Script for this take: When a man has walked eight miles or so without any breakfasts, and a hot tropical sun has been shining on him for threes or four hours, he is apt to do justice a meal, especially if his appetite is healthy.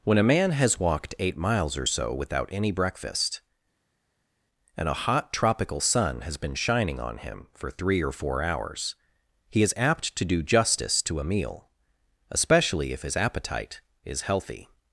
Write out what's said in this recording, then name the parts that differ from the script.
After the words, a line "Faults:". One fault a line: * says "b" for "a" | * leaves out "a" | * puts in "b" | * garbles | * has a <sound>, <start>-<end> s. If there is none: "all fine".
When a man has walked eight miles or so without any breakfast, and a hot tropical sun has been shining on him for three or four hours, he is apt to do justice to a meal, especially if his appetite is healthy.
Faults:
* says "breakfast" for "breakfasts"
* says "three" for "threes"
* puts in "to"